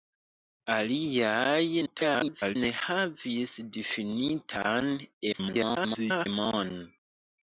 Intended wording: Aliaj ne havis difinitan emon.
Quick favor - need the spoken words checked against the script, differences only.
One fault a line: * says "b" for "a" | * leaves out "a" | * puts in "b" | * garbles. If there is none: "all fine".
* garbles
* garbles